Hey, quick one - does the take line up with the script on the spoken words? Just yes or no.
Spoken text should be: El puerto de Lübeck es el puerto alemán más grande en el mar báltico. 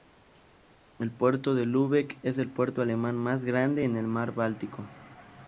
yes